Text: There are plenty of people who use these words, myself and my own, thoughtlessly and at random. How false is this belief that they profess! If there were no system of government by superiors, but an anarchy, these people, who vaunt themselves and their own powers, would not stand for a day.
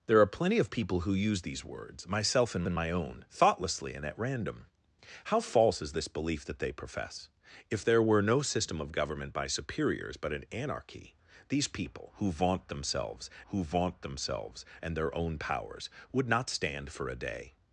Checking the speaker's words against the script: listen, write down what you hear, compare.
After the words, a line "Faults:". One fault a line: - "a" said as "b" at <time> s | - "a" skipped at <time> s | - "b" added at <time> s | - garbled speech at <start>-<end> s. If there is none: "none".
There are plenty of people who use these words, myself and and my own, thoughtlessly and at random. How false is this belief that they profess! If there were no system of government by superiors, but an anarchy, these people, who vaunt themselves who vaunt themselves and their own powers, would not stand for a day.
Faults:
- "and" added at 2.7 s
- "who vaunt themselves" added at 13.5 s